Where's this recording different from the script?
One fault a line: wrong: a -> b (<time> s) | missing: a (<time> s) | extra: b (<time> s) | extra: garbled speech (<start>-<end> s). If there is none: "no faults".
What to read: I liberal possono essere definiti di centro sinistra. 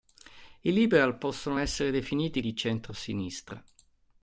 no faults